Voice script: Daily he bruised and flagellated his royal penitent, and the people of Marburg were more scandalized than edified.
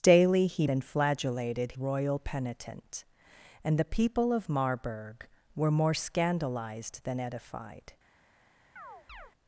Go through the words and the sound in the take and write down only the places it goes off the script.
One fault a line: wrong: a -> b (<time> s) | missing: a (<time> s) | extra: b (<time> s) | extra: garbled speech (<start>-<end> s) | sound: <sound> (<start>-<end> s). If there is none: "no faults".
missing: bruised (0.7 s)
missing: his (1.7 s)
sound: chirp (8.8-9.3 s)